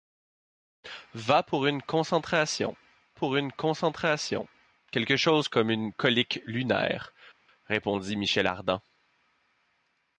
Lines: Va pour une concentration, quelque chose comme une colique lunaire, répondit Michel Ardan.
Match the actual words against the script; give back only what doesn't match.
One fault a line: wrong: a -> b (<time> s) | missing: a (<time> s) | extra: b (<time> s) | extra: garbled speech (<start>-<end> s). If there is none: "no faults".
extra: pour une concentration (3.1 s)